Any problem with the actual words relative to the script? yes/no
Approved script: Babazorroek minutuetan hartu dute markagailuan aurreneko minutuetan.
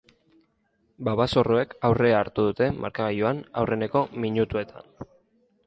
yes